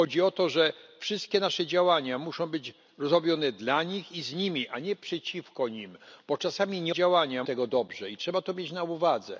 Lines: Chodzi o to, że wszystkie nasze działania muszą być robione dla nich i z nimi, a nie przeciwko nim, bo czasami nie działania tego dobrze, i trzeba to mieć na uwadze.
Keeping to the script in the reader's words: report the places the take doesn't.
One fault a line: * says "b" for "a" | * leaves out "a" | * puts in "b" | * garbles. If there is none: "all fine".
all fine